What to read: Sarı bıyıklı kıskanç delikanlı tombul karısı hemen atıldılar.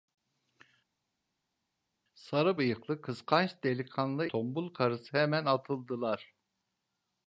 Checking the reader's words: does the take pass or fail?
pass